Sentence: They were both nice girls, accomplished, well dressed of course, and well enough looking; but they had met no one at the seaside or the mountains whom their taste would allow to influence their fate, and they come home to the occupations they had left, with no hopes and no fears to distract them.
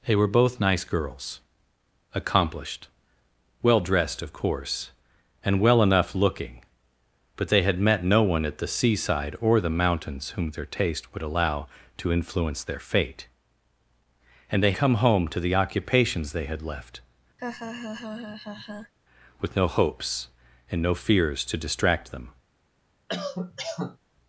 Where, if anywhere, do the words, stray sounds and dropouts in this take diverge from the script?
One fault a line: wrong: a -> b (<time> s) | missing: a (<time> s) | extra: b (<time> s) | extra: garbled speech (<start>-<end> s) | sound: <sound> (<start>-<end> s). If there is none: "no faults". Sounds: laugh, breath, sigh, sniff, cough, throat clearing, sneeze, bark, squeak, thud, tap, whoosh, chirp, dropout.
sound: laugh (17.4-18.9 s)
sound: cough (23.1-24.0 s)